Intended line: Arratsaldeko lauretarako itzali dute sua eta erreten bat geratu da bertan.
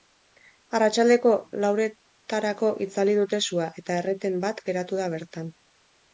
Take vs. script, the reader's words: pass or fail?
pass